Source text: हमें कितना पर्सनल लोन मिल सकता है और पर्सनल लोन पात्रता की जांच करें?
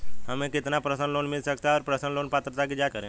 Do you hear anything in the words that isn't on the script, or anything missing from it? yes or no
no